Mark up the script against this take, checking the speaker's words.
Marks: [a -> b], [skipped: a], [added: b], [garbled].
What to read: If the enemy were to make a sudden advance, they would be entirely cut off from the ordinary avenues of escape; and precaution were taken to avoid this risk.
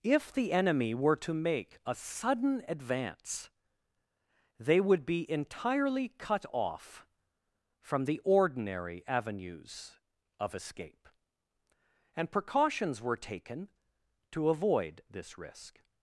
If the enemy were to make a sudden advance, they would be entirely cut off from the ordinary avenues of escape; and [precaution -> precautions] were taken to avoid this risk.